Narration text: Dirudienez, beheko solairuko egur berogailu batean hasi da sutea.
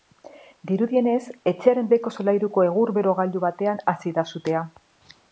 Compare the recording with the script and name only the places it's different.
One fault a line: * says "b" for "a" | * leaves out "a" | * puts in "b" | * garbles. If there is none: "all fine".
* puts in "etxearen"